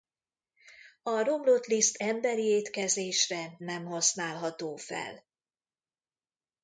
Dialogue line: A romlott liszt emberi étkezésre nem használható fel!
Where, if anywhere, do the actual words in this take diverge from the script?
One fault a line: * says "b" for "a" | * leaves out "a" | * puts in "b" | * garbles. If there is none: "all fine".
all fine